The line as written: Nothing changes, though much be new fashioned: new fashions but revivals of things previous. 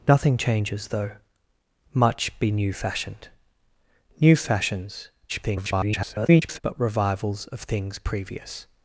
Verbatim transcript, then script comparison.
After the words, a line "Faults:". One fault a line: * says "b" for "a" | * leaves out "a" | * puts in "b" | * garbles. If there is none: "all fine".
Nothing changes, though much be new fashioned: new fashions [garbled] but revivals of things previous.
Faults:
* garbles